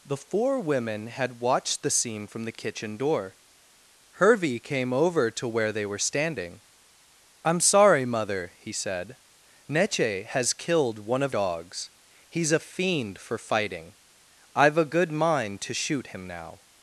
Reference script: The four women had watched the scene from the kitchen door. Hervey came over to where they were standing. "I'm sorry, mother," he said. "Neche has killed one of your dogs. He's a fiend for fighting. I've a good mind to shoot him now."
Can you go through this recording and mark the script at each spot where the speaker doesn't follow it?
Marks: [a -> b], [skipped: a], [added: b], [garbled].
The four women had watched the scene from the kitchen door. Hervey came over to where they were standing. "I'm sorry, mother," he said. "Neche has killed one of [skipped: your] dogs. He's a fiend for fighting. I've a good mind to shoot him now."